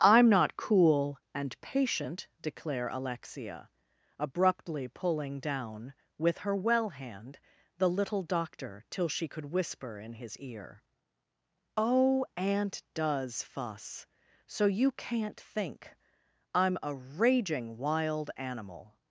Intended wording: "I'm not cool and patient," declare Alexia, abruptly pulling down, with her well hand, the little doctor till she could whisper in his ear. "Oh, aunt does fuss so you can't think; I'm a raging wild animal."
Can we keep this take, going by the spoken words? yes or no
yes